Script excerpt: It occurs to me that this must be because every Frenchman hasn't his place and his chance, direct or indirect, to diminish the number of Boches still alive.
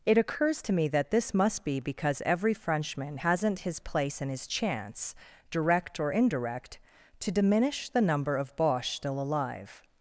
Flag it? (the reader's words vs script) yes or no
no